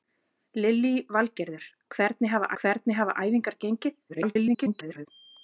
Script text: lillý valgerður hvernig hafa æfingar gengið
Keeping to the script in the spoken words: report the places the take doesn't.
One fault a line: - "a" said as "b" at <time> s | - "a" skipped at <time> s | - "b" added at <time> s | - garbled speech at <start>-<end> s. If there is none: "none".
- "hvernig hafa" added at 2.6 s
- garbled speech at 4.1-5.1 s